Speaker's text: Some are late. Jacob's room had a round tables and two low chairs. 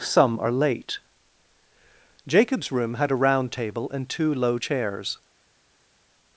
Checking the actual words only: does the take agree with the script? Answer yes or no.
no